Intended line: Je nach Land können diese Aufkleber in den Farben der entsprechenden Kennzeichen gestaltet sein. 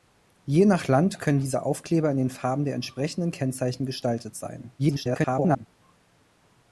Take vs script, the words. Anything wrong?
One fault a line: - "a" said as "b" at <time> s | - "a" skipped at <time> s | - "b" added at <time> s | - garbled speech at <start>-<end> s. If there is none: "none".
- garbled speech at 4.8-5.7 s